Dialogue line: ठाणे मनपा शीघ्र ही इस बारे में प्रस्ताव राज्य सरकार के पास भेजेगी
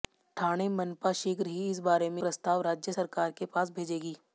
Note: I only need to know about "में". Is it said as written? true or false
true